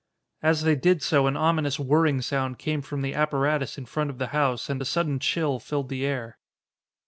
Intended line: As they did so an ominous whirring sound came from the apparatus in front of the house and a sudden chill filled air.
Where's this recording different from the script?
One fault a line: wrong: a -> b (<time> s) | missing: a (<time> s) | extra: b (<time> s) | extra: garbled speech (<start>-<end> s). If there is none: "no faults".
extra: the (5.9 s)